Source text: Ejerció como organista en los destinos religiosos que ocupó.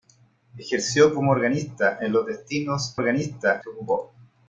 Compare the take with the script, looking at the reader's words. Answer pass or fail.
fail